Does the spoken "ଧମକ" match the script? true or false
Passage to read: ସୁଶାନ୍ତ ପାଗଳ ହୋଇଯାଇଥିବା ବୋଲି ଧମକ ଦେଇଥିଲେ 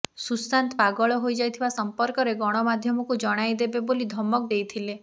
true